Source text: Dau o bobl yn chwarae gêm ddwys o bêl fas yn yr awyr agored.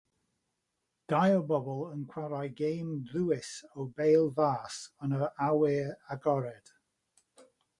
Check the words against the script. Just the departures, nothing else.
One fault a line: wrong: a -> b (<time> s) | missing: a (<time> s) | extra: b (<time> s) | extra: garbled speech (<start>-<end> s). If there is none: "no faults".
no faults